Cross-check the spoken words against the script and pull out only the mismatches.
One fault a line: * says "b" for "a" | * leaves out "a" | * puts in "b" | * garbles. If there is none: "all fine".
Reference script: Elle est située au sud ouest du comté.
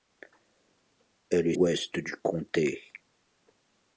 * leaves out "située au sud"